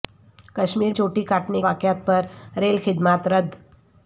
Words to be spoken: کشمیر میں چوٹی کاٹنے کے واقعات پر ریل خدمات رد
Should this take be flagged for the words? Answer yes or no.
yes